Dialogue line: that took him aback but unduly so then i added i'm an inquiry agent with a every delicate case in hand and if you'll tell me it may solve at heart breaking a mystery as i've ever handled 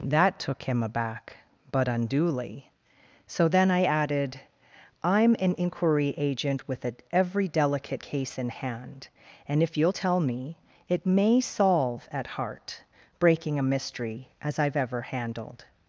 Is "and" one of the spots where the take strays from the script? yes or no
no